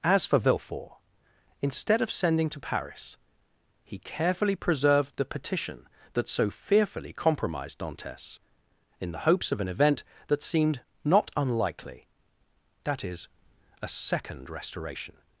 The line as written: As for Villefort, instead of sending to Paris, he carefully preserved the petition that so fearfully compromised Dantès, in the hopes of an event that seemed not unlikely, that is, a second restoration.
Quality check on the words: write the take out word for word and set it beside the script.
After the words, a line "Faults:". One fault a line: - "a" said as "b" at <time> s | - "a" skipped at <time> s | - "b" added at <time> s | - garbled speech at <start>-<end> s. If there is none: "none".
As for Villefort, instead of sending to Paris, he carefully preserved the petition that so fearfully compromised Dantès, in the hopes of an event that seemed not unlikely, that is, a second restoration.
Faults:
none